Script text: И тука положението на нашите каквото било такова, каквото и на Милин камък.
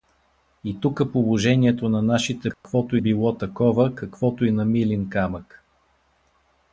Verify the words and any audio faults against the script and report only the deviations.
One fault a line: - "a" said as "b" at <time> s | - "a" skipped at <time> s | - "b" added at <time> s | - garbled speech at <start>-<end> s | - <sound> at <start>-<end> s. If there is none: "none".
- dropout at 2.5-2.6 s